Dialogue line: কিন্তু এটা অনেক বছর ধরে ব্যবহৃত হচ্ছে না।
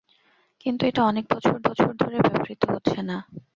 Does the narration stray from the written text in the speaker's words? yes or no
yes